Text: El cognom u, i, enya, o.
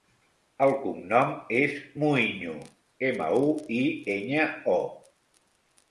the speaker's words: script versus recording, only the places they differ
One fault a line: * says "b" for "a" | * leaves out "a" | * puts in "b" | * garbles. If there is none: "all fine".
* puts in "és Muiño ema"